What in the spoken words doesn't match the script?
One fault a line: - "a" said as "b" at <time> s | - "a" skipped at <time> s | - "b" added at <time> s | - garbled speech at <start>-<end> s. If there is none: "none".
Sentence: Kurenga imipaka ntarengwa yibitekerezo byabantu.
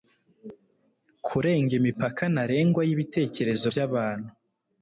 none